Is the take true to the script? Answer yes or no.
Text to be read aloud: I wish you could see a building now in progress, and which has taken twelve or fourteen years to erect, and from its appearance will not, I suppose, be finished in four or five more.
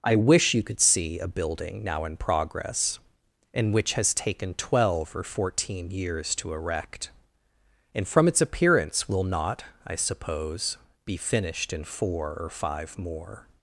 yes